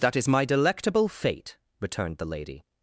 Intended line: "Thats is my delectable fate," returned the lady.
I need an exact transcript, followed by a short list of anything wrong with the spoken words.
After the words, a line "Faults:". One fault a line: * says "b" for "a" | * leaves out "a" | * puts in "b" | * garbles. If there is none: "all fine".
"That is my delectable fate," returned the lady.
Faults:
* says "That" for "Thats"